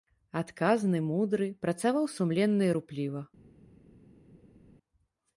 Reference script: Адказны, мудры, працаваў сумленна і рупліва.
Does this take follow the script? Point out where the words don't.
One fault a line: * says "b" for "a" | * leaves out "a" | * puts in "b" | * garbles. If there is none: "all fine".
all fine